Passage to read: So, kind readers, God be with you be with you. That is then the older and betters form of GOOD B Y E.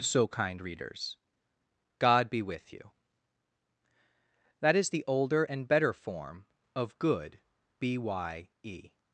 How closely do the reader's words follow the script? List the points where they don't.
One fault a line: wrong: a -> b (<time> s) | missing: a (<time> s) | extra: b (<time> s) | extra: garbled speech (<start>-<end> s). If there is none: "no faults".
missing: be with you (2.9 s)
missing: then (4.9 s)
wrong: betters -> better (5.7 s)